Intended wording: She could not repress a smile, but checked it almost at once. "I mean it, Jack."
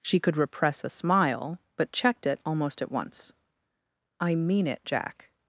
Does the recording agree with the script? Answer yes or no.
no